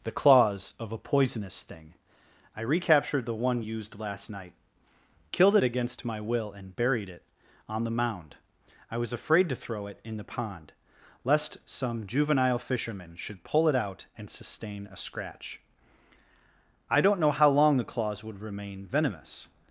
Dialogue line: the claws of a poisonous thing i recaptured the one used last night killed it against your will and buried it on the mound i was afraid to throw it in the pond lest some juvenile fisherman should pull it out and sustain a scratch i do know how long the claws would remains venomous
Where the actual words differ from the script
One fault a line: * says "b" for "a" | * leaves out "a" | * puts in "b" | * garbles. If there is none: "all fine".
* says "my" for "your"
* says "don't" for "do"
* says "remain" for "remains"